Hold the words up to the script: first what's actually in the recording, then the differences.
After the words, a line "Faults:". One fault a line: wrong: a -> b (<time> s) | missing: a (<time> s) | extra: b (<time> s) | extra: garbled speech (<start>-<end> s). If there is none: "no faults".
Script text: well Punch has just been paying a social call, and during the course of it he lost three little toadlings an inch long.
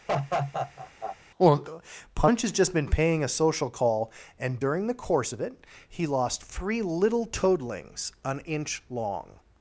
well Punch has just been paying a social call, and during the course of it he lost three little toadlings an inch long.
Faults:
no faults